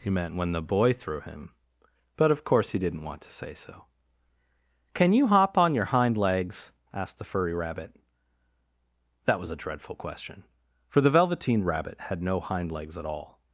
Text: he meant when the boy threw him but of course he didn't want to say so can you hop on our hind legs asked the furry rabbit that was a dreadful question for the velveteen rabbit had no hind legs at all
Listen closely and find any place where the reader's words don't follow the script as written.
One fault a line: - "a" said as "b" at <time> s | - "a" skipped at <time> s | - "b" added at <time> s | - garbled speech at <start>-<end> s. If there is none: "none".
- "our" said as "your" at 5.7 s